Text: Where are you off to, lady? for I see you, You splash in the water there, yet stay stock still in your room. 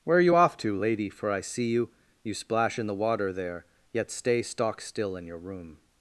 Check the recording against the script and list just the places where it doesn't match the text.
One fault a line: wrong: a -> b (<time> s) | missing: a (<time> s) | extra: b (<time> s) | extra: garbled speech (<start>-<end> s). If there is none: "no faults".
no faults